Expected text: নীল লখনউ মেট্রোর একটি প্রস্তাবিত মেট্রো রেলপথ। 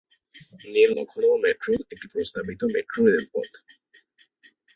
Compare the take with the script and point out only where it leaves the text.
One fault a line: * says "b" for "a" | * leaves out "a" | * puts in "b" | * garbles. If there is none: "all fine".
all fine